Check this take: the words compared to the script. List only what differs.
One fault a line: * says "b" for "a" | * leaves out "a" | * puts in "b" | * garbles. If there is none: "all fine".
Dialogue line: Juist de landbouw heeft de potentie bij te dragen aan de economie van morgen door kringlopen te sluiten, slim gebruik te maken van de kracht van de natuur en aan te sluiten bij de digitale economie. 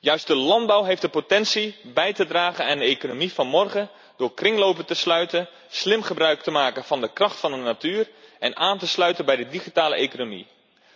all fine